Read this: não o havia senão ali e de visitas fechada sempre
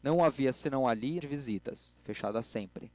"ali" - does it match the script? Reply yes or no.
yes